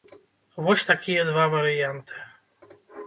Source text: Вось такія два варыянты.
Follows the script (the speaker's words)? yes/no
yes